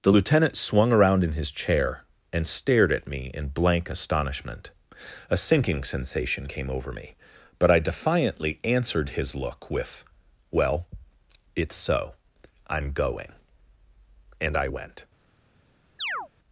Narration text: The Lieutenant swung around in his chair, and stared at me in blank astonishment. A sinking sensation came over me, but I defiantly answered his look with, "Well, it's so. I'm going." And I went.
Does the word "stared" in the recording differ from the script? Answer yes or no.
no